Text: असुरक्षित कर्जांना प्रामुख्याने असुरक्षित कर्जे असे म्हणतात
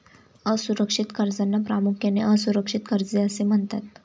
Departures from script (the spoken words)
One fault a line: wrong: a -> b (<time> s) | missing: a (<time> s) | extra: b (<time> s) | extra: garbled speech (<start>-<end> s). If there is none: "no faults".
no faults